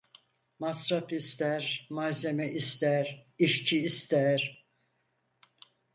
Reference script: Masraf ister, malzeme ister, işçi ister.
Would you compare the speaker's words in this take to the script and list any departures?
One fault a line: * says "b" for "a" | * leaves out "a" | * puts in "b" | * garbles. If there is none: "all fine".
all fine